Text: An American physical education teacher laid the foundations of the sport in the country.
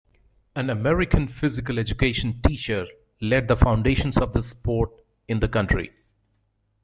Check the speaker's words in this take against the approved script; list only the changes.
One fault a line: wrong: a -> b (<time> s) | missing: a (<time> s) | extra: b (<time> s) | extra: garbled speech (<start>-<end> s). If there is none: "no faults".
no faults